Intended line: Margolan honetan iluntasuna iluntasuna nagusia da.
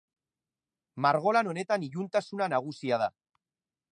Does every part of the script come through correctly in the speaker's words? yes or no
no